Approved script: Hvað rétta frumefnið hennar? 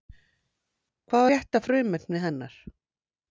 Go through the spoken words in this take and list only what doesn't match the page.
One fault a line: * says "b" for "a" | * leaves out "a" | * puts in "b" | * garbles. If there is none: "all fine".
all fine